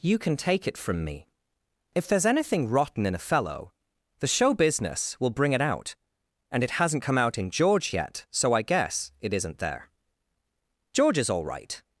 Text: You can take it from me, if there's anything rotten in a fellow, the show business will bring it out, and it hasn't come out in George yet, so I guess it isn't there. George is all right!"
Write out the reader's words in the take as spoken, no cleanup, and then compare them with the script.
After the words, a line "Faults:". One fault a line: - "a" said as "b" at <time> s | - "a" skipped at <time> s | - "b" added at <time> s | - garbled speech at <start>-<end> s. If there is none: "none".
You can take it from me, if there's anything rotten in a fellow, the show business will bring it out, and it hasn't come out in George yet, so I guess it isn't there. George is all right!"
Faults:
none